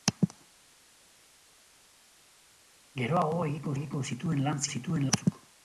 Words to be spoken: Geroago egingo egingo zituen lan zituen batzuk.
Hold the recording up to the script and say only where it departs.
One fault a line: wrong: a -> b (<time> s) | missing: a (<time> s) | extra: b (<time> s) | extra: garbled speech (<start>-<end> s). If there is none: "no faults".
no faults